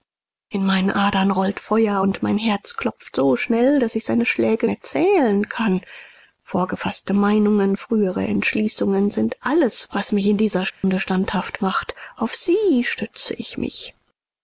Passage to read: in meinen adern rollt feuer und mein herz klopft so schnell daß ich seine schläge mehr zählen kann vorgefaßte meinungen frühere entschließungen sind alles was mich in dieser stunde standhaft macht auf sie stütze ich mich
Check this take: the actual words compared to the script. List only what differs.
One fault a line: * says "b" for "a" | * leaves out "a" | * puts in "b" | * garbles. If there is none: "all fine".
all fine